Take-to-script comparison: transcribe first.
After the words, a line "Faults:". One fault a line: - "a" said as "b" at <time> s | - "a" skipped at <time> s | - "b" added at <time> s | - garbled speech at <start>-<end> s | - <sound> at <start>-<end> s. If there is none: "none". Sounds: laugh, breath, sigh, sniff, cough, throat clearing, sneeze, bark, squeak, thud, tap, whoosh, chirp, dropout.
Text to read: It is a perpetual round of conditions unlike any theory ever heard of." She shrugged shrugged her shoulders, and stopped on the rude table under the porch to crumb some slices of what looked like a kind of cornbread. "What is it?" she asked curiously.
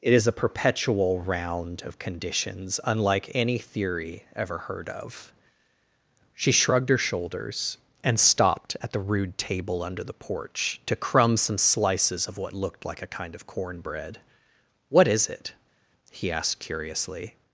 It is a perpetual round of conditions unlike any theory ever heard of." She shrugged her shoulders, and stopped at the rude table under the porch to crumb some slices of what looked like a kind of cornbread. "What is it?" he asked curiously.
Faults:
- "shrugged" skipped at 6.9 s
- "on" said as "at" at 8.8 s
- "she" said as "he" at 16.1 s